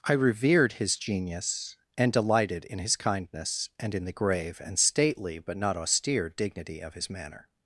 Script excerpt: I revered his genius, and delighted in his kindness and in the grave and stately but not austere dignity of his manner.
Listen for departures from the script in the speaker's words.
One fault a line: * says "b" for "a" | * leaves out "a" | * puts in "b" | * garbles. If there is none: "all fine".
all fine